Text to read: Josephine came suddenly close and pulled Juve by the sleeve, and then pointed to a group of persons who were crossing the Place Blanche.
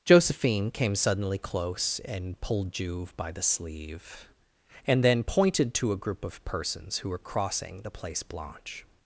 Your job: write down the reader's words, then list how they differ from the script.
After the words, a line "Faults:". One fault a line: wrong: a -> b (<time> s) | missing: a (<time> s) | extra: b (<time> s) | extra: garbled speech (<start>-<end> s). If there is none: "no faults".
Josephine came suddenly close and pulled Juve by the sleeve, and then pointed to a group of persons who were crossing the Place Blanche.
Faults:
no faults